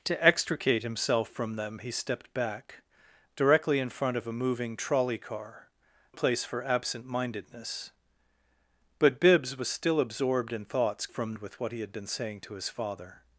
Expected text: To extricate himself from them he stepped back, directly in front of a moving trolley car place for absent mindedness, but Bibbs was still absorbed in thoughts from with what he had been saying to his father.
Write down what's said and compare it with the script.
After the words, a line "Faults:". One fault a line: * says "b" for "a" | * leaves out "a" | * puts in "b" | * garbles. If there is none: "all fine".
To extricate himself from them he stepped back, directly in front of a moving trolley car place for absent mindedness, but Bibbs was still absorbed in thoughts from with what he had been saying to his father.
Faults:
all fine